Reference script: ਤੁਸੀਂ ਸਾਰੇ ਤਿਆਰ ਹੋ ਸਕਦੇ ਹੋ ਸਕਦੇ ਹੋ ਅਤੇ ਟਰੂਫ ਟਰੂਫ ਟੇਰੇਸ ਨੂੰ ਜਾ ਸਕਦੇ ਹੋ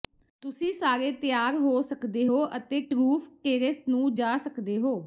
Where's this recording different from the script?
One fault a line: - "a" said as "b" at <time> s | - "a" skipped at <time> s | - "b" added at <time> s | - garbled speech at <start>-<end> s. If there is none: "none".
- "ਸਕਦੇ ਹੋ" skipped at 2.4 s
- "ਟਰੂਫ" skipped at 3.3 s